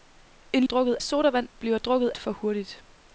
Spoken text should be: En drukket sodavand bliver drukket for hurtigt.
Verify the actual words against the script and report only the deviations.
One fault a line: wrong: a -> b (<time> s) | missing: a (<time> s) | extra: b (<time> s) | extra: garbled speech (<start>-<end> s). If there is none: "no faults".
no faults